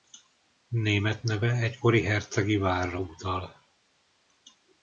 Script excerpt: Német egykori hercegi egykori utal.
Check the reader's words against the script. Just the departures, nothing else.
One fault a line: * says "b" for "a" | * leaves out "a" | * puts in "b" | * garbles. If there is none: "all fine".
* puts in "neve"
* says "várra" for "egykori"